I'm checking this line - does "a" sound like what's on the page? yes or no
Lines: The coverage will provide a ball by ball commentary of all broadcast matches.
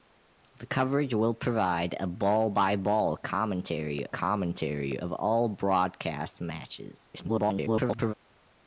yes